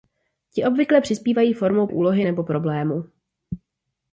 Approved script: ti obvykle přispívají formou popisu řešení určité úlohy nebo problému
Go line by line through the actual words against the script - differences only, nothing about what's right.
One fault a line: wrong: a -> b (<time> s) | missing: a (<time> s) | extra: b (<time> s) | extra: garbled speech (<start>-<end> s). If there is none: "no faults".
missing: popisu řešení určité (1.9 s)